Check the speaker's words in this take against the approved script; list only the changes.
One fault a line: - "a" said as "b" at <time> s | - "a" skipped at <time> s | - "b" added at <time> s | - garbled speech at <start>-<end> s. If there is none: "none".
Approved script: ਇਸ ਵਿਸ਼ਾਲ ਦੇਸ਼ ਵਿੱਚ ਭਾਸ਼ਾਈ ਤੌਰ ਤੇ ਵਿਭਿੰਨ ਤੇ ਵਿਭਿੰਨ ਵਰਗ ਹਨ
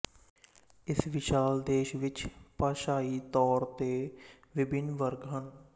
- "ਤੇ ਵਿਭਿੰਨ" skipped at 4.9 s